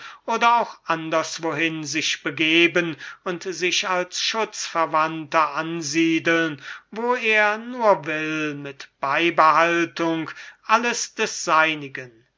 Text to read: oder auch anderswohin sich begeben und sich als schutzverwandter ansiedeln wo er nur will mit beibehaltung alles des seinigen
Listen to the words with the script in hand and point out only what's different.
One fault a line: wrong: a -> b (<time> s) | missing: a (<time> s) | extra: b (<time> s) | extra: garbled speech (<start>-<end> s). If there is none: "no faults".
no faults